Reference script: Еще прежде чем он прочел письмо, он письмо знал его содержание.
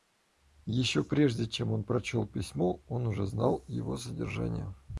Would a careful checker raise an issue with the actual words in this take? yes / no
yes